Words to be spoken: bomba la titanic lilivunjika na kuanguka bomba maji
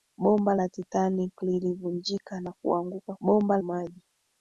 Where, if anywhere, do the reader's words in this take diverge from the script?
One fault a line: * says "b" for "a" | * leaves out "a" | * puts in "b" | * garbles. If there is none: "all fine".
all fine